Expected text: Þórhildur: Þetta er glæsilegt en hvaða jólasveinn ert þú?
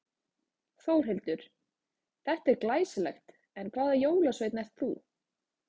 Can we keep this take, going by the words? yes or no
yes